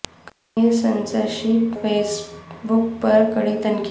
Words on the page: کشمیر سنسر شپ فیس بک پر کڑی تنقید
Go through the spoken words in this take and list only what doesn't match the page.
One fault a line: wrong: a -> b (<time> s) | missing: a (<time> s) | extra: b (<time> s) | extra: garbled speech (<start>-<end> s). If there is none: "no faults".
no faults